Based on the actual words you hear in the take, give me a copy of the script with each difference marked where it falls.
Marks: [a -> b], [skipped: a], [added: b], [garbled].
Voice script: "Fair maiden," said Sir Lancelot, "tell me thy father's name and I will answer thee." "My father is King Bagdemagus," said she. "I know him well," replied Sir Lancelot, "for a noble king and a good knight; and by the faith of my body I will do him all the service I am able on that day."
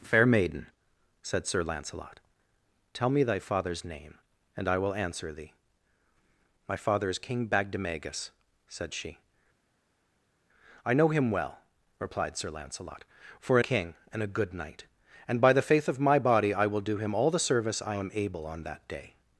"Fair maiden," said Sir Lancelot, "tell me thy father's name and I will answer thee." "My father is King Bagdemagus," said she. "I know him well," replied Sir Lancelot, "for a [skipped: noble] king and a good knight; and by the faith of my body I will do him all the service I am able on that day."